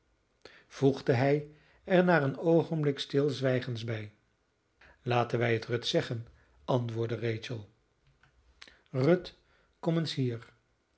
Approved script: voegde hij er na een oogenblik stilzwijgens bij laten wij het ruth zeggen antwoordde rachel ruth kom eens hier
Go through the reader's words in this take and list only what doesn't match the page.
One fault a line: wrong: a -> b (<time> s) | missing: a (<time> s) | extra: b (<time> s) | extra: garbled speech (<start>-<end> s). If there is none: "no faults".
no faults